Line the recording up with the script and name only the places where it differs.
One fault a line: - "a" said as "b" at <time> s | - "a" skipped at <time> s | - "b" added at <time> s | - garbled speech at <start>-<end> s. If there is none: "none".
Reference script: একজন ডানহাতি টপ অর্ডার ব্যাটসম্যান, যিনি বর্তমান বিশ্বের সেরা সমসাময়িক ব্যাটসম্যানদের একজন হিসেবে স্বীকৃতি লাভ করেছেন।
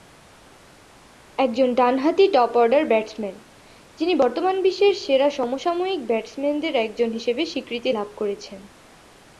none